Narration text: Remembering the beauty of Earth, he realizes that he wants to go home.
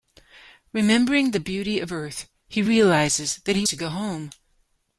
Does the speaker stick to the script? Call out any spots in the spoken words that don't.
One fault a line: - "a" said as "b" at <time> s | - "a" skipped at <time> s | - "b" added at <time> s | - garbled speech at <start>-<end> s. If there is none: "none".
- "wants" skipped at 3.7 s